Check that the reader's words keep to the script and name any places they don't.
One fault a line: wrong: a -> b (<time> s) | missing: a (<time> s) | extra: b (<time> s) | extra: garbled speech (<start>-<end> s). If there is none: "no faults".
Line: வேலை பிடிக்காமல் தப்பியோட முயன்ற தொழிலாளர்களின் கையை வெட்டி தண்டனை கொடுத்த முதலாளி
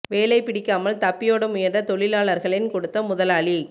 missing: கையை வெட்டி தண்டனை (2.7 s)